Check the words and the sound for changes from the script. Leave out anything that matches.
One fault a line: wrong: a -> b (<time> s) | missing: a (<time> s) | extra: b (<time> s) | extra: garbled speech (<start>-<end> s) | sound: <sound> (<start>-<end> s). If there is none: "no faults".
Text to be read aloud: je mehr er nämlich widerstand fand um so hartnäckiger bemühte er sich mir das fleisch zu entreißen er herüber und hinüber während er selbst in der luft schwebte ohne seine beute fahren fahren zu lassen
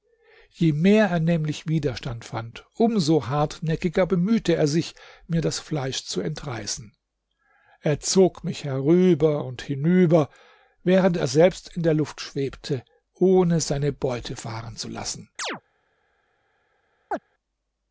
extra: zog mich (8.0 s)
missing: fahren (14.7 s)
sound: chirp (15.4-15.6 s)
sound: chirp (17.1-17.2 s)